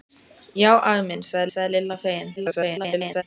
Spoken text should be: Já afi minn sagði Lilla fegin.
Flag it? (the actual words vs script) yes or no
yes